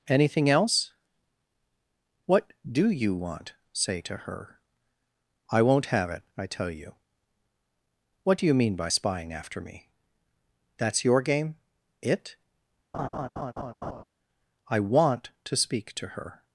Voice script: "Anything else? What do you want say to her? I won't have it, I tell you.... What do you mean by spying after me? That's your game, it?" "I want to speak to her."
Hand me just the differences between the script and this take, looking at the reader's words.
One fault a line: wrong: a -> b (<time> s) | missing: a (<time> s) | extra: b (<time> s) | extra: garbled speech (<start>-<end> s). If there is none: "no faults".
no faults